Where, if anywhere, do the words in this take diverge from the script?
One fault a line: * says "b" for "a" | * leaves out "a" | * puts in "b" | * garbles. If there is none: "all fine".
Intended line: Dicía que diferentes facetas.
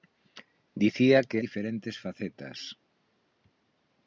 all fine